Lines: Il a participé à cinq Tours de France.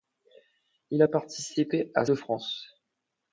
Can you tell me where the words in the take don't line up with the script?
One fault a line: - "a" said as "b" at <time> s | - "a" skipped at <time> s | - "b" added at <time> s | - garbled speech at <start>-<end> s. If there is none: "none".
- "cinq Tours" skipped at 2.1 s